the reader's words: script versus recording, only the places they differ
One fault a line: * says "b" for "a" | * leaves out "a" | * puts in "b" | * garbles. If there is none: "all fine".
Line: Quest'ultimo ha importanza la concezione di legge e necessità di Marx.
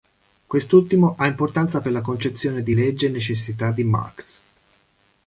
* puts in "per"